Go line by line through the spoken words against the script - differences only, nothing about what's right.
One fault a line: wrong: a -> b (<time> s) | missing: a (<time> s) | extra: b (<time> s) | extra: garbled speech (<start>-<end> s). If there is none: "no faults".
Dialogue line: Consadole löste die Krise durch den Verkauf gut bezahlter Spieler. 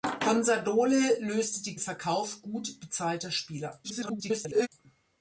missing: Krise durch den (1.8 s)
extra: garbled speech (3.8-4.7 s)